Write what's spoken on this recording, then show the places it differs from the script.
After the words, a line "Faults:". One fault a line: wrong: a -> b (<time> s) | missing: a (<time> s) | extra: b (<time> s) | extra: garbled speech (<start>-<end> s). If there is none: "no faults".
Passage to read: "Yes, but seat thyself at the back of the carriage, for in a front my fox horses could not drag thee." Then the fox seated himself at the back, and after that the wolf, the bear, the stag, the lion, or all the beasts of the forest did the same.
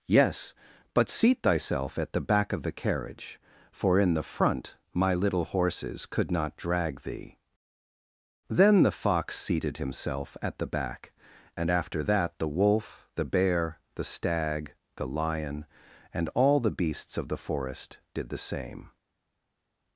"Yes, but seat thyself at the back of the carriage, for in the front my little horses could not drag thee." Then the fox seated himself at the back, and after that the wolf, the bear, the stag, the lion, and all the beasts of the forest did the same.
Faults:
wrong: a -> the (4.1 s)
wrong: fox -> little (5.1 s)
wrong: or -> and (16.1 s)